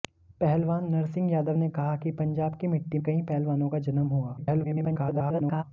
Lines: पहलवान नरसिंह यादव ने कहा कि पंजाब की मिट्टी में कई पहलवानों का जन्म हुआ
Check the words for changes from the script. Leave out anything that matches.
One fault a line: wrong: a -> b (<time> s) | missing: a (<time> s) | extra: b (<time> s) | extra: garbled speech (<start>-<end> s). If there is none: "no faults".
missing: में (3.0 s)
extra: garbled speech (4.4-5.6 s)